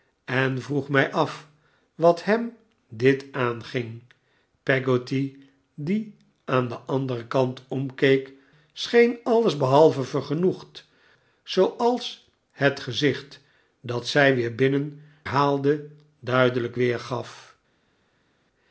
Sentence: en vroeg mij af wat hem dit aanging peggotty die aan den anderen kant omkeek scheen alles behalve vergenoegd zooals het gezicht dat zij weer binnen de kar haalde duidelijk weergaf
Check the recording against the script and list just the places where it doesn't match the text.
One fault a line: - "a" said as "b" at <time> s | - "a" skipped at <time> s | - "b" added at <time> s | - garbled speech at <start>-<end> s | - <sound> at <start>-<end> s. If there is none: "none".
- "de kar" skipped at 15.0 s